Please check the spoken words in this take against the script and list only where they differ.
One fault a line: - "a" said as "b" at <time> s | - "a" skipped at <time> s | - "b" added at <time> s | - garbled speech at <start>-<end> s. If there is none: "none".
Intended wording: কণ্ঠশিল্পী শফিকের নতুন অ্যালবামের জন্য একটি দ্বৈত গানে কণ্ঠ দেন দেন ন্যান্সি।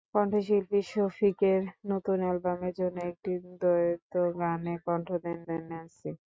none